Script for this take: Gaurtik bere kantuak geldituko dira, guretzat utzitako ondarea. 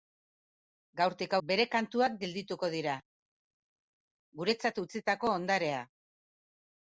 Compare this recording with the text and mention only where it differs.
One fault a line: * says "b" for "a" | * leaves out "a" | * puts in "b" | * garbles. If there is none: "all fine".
all fine